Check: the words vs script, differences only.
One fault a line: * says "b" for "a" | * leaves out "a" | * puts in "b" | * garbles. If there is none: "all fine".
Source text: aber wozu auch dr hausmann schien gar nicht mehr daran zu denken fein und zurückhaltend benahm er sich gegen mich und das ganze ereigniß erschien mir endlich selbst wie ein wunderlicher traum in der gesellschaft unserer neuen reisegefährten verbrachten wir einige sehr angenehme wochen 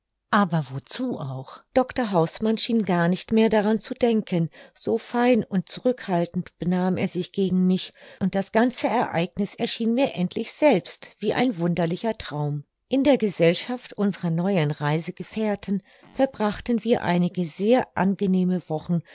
* puts in "so"